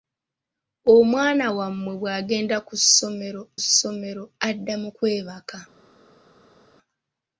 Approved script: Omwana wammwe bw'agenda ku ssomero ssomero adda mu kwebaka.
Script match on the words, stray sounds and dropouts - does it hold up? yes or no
yes